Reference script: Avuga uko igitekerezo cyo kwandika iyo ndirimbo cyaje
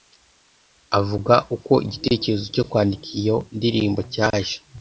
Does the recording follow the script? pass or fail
pass